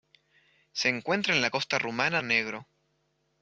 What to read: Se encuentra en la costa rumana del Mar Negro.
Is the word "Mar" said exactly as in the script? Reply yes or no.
no